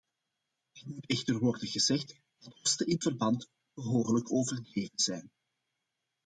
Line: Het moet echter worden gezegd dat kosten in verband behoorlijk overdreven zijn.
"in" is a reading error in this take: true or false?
false